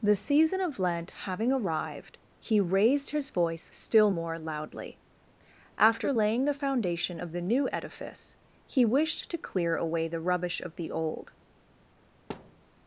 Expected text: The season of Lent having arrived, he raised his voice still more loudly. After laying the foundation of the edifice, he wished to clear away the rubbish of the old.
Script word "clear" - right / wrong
right